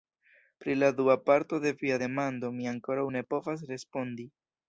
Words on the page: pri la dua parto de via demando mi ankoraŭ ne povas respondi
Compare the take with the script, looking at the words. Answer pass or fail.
pass